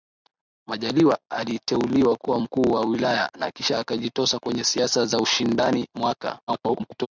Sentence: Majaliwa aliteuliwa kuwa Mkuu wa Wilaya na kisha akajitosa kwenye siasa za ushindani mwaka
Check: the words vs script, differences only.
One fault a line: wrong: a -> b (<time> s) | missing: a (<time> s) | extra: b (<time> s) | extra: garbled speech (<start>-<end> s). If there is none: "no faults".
extra: garbled speech (6.5-7.1 s)